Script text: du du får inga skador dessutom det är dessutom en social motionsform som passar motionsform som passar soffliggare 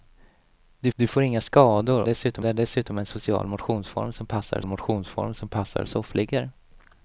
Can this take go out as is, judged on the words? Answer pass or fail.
pass